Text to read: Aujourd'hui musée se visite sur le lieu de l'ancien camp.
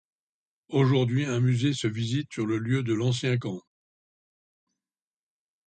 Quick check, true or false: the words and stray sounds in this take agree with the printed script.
false